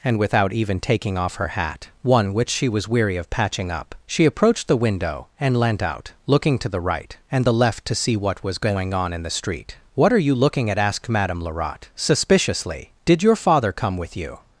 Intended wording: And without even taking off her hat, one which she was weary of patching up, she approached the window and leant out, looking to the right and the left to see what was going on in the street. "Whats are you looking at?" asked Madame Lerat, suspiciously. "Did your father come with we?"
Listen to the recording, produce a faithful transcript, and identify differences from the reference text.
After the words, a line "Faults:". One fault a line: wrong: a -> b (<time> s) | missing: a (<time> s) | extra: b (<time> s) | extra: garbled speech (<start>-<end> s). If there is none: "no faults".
And without even taking off her hat, one which she was weary of patching up, she approached the window and leant out, looking to the right and the left to see what was going on in the street. "What are you looking at?" asked Madame Lerat, suspiciously. "Did your father come with you?"
Faults:
wrong: Whats -> What (9.9 s)
wrong: we -> you (14.2 s)